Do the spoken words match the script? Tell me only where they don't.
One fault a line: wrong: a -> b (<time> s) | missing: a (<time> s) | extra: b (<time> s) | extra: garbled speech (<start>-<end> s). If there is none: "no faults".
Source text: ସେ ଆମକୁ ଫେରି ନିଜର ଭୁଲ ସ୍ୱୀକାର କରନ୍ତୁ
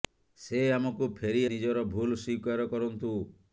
no faults